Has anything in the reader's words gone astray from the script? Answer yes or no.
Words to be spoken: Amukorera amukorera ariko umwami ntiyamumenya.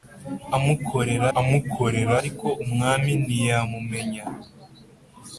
no